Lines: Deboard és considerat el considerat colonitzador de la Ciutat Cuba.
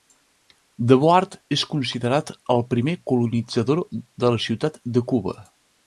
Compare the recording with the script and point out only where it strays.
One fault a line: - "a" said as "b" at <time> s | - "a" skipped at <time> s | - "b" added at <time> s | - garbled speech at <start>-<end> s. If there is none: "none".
- "considerat" said as "primer" at 2.7 s
- "de" added at 5.0 s